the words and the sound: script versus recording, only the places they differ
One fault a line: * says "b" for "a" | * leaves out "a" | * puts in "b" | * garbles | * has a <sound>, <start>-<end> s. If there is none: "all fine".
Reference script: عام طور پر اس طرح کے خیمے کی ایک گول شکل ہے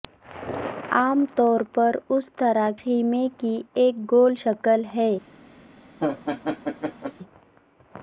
* leaves out "کے"
* has a laugh, 6.0-7.1 s